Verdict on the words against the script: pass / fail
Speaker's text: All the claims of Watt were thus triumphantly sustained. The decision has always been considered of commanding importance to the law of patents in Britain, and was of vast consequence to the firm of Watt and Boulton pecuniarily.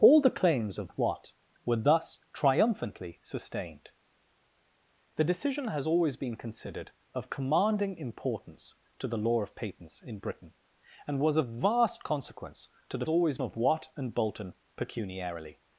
fail